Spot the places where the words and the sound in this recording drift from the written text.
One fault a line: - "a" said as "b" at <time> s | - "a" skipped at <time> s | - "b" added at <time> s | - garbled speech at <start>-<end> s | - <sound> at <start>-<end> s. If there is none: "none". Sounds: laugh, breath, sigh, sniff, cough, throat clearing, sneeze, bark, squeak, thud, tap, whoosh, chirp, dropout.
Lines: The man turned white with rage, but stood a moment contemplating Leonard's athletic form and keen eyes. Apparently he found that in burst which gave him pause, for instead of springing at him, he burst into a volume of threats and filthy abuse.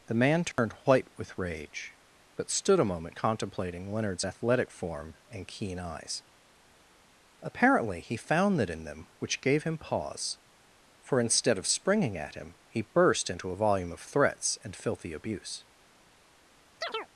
- dropout at 0.5-0.6 s
- "burst" said as "them" at 8.8 s
- chirp at 16.8-17.1 s